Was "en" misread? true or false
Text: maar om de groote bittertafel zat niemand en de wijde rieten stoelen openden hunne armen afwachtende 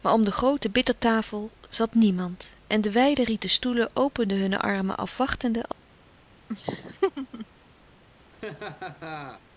false